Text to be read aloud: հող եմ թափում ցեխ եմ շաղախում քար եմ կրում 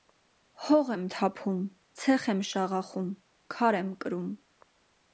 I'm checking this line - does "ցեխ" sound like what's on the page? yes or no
yes